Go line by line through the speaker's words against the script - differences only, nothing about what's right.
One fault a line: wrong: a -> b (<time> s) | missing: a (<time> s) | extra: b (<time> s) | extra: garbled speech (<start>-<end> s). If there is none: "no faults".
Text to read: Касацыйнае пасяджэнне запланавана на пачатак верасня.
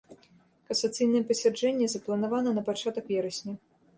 no faults